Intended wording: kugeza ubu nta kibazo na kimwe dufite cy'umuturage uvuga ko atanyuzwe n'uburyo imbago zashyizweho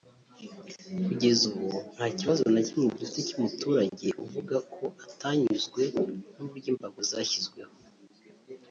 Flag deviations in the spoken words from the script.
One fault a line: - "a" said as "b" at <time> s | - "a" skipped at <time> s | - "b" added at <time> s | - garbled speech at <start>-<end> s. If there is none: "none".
none